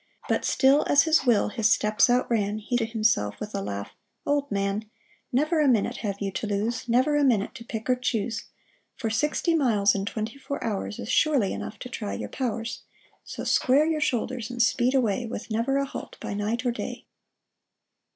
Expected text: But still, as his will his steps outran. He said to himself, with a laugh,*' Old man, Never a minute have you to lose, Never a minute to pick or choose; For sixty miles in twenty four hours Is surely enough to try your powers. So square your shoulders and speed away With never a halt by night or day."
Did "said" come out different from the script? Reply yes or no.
yes